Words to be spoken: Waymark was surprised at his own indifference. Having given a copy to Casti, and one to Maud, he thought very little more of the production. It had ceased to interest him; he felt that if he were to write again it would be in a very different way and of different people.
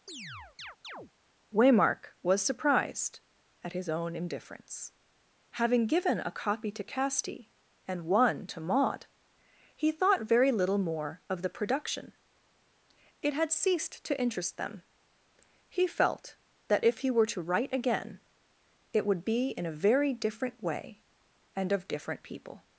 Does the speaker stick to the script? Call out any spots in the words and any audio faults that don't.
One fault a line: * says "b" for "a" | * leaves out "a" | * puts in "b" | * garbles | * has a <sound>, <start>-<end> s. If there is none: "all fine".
* has a chirp, 0.1-1.1 s
* says "them" for "him"